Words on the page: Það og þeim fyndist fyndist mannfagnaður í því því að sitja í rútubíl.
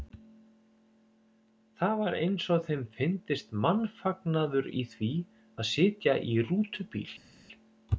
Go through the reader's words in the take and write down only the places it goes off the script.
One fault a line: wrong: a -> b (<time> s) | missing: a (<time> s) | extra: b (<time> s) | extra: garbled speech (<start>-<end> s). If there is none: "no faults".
extra: var eins (2.0 s)
missing: fyndist (3.5 s)
missing: því (5.1 s)